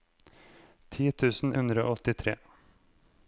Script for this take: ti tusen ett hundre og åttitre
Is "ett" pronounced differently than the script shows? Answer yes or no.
yes